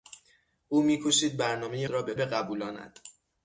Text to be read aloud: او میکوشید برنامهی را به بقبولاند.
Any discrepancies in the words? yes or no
no